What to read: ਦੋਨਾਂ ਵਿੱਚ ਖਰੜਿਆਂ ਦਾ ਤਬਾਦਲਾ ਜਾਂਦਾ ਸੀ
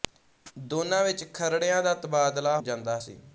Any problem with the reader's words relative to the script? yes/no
no